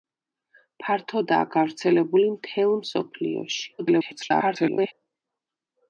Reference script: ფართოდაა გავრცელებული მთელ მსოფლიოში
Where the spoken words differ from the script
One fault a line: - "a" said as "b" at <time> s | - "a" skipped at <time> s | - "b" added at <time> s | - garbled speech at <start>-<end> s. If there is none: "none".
- garbled speech at 3.8-4.9 s